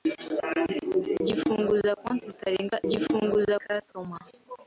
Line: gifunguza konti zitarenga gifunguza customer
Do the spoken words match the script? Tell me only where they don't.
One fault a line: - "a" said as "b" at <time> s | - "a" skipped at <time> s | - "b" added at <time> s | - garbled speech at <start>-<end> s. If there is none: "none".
none